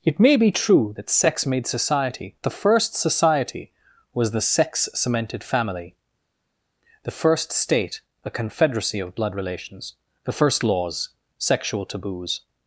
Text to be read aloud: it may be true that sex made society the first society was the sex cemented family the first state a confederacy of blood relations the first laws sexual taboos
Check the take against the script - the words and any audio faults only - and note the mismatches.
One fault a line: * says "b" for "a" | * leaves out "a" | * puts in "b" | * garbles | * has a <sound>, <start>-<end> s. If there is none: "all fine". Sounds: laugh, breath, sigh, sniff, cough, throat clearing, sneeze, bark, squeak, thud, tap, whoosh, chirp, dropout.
all fine